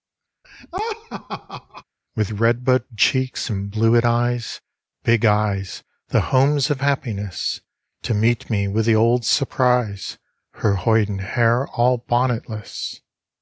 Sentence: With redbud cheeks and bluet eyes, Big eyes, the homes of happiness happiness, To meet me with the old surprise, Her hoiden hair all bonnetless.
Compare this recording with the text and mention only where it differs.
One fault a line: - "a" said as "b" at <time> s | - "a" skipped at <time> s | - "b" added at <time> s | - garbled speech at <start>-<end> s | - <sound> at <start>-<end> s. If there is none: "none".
- laugh at 0.4-1.8 s
- "happiness" skipped at 7.6 s